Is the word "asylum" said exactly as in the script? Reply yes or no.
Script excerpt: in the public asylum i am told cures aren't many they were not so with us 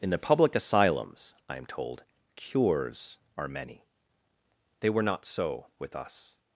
no